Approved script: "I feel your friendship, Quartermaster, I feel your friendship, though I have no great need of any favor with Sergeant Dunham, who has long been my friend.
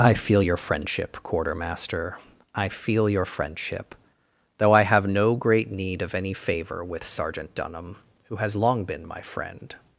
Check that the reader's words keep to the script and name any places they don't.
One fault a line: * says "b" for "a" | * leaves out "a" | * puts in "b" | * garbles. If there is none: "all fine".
all fine